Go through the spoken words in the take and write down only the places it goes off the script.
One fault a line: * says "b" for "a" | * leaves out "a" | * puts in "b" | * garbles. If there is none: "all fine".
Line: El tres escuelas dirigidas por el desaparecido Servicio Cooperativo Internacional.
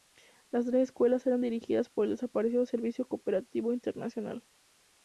* says "Las" for "El"
* puts in "eran"